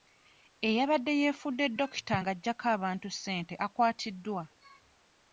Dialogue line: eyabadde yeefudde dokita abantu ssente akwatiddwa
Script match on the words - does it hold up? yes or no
no